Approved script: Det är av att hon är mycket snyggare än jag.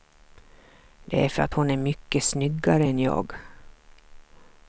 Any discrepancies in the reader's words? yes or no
yes